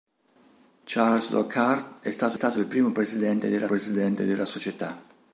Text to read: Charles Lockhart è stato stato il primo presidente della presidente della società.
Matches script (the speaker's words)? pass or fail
pass